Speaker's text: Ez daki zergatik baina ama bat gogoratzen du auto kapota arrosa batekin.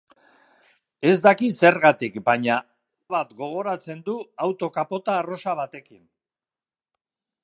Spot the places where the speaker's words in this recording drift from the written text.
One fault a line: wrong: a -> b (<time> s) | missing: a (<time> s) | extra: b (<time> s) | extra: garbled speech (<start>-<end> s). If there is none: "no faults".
missing: ama (2.5 s)